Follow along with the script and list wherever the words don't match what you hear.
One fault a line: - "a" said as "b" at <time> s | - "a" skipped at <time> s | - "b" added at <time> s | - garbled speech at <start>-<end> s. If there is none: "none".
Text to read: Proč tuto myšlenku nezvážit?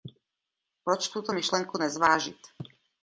none